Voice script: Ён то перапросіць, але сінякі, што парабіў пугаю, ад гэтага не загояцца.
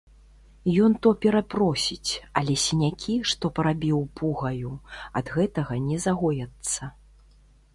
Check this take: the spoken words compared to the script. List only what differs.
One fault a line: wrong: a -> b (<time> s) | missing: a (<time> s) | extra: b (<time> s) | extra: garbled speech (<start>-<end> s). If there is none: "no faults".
no faults